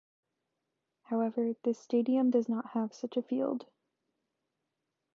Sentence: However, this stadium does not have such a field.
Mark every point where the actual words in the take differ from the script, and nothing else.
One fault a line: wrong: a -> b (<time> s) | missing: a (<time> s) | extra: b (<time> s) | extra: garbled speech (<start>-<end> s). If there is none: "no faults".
no faults